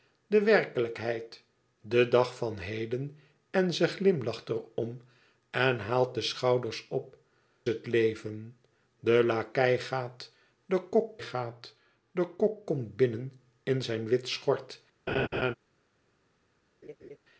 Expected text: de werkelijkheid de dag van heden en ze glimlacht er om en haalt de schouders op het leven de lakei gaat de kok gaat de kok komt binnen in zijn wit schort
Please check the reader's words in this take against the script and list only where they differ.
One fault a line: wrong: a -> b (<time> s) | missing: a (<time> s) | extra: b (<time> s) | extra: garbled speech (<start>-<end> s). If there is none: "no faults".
no faults